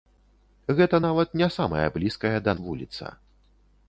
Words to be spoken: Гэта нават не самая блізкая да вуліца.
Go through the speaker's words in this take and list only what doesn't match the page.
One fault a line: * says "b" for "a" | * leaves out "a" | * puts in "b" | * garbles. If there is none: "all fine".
all fine